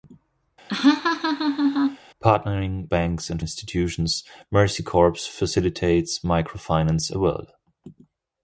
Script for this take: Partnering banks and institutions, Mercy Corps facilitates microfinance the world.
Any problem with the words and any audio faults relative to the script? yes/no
yes